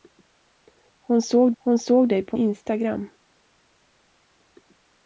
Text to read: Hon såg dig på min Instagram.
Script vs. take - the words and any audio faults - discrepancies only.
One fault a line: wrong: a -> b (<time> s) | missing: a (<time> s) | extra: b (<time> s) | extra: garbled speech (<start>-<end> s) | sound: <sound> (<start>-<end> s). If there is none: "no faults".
extra: hon såg (1.6 s)
missing: min (2.4 s)